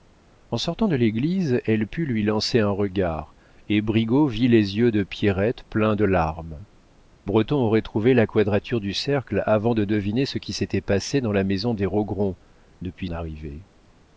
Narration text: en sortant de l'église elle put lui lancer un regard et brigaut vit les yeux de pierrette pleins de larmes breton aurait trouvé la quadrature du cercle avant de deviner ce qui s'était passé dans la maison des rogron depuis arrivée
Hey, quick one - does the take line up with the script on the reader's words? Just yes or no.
yes